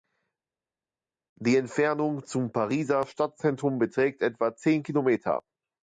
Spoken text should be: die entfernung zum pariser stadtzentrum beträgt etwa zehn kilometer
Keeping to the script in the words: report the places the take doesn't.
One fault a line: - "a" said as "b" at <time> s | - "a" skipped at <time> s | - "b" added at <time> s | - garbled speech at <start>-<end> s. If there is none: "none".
none